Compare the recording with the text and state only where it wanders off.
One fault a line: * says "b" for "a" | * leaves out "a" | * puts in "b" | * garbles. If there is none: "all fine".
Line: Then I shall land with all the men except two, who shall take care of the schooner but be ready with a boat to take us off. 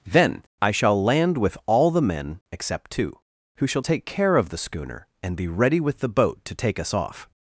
* says "and" for "but"
* says "the" for "a"